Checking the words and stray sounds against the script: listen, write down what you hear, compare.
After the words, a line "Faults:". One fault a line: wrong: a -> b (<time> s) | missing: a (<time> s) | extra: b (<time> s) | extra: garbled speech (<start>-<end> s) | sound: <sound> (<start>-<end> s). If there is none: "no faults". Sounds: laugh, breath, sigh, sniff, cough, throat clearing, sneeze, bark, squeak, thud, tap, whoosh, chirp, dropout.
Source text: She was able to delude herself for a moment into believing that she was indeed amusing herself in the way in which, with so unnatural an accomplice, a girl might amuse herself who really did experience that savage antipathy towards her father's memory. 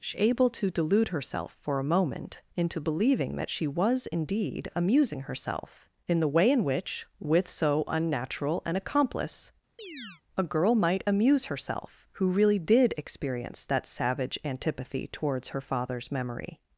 She able to delude herself for a moment into believing that she was indeed amusing herself in the way in which, with so unnatural an accomplice, a girl might amuse herself who really did experience that savage antipathy towards her father's memory.
Faults:
missing: was (0.2 s)
sound: chirp (9.8-10.2 s)